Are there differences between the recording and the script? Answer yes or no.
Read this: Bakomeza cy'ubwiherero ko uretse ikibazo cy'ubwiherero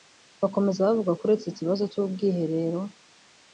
yes